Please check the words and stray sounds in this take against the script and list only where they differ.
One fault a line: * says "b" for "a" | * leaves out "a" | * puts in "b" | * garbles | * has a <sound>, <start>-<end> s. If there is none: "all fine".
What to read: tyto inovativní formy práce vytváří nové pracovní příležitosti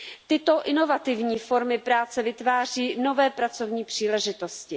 all fine